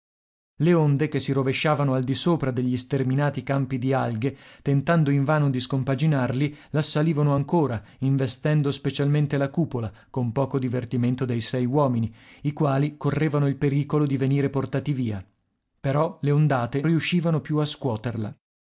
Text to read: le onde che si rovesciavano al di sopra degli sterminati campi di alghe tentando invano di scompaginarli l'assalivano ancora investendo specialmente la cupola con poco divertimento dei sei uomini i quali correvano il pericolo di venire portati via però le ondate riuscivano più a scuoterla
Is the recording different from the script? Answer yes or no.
no